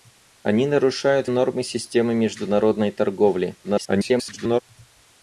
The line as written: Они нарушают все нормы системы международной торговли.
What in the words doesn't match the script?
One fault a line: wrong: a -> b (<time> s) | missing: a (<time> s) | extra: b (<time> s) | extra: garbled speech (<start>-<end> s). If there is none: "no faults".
missing: все (1.3 s)
extra: garbled speech (3.6-4.6 s)